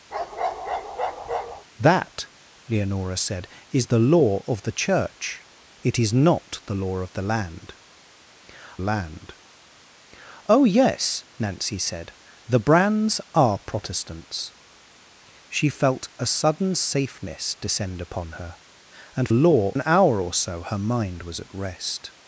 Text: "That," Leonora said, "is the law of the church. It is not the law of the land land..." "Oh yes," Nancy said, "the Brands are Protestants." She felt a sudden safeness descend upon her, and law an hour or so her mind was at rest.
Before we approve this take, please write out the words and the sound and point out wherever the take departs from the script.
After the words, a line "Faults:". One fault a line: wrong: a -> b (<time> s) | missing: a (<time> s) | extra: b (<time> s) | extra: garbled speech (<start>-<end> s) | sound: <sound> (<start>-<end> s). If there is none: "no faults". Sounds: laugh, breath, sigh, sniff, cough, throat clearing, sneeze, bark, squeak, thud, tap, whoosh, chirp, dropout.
"That," Leonora said, "is the law of the church. It is not the law of the land land..." "Oh yes," Nancy said, "the Brands are Protestants." She felt a sudden safeness descend upon her, and law an hour or so her mind was at rest.
Faults:
sound: bark (0.1-1.6 s)